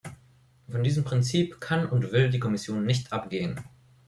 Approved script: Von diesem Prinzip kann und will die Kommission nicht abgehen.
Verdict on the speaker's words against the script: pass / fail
pass